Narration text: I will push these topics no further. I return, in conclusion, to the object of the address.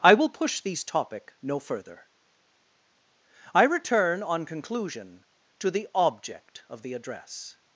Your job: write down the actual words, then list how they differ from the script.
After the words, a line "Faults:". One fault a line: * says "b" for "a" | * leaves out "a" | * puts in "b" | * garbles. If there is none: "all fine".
I will push these topic no further. I return, on conclusion, to the object of the address.
Faults:
* says "topic" for "topics"
* says "on" for "in"